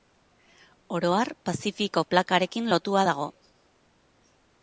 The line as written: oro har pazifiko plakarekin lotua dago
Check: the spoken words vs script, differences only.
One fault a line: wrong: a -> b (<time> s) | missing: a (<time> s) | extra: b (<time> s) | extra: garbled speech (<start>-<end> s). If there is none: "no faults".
no faults